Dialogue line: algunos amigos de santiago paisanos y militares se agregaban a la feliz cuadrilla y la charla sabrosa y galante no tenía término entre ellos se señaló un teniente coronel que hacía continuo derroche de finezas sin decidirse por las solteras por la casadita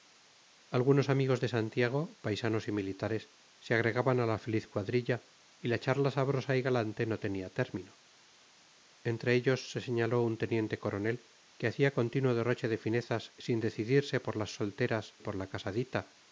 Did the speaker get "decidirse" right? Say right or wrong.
right